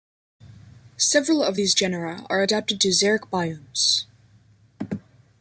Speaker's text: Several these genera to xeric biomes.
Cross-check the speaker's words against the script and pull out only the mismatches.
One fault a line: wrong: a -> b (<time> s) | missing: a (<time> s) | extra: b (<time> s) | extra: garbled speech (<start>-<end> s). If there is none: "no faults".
extra: of (1.4 s)
extra: are adapted (2.3 s)